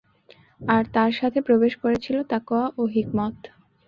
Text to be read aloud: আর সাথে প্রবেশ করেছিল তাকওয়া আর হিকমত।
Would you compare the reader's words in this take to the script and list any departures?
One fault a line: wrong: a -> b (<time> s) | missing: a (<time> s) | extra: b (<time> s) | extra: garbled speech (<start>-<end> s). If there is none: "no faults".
extra: তার (0.9 s)
wrong: আর -> ও (2.8 s)